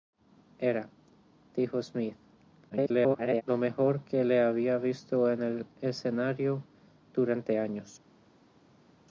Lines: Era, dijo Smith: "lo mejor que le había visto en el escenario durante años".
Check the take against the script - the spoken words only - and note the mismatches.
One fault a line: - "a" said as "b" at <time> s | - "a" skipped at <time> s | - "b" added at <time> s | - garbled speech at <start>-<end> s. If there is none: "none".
- garbled speech at 2.7-3.4 s